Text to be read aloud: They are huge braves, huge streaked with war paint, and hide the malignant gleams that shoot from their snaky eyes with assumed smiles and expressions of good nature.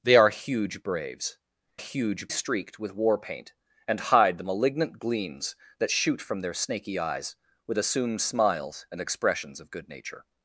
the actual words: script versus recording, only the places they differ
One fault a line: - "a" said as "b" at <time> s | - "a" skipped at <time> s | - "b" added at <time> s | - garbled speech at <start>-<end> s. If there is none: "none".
none